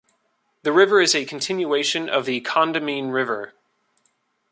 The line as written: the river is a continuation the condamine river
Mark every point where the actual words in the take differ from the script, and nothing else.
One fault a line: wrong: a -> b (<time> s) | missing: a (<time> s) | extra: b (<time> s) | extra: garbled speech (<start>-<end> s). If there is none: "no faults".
extra: of (2.1 s)